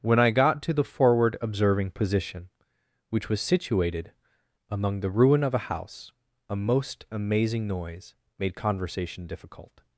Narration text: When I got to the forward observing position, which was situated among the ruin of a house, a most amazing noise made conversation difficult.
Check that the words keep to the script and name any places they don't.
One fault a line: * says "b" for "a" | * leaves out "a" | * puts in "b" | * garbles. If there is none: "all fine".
all fine